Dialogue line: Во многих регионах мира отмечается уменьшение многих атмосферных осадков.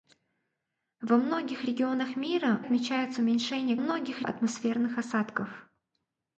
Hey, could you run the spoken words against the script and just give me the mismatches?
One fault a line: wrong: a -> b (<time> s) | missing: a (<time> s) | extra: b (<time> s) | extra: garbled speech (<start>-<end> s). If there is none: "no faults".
no faults